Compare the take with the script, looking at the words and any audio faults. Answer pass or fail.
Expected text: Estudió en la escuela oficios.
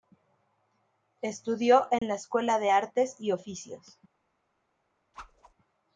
fail